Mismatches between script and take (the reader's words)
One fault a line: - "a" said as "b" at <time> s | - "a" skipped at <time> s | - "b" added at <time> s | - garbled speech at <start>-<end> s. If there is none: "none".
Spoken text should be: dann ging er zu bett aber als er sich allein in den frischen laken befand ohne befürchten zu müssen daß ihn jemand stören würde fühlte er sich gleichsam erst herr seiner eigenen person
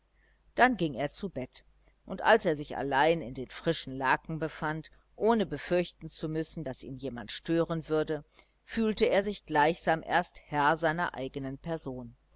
- "aber" said as "und" at 2.1 s